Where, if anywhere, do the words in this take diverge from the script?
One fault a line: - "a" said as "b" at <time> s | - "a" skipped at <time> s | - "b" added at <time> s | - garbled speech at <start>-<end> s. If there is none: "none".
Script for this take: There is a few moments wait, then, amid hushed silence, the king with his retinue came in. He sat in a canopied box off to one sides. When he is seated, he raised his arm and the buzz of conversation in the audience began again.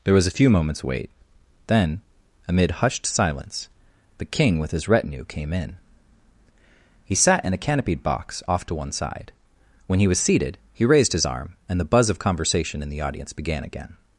- "is" said as "was" at 0.1 s
- "sides" said as "side" at 8.9 s
- "is" said as "was" at 10.1 s